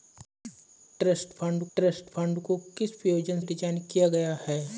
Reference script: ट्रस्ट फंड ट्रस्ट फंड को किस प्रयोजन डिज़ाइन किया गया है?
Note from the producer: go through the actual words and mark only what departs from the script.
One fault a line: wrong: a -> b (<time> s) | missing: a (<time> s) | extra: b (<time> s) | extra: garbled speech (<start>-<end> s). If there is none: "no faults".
no faults